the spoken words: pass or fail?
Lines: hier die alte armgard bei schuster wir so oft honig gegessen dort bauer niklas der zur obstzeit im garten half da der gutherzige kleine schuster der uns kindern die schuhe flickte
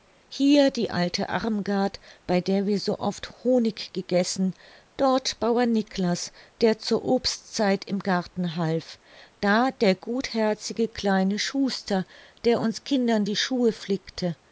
fail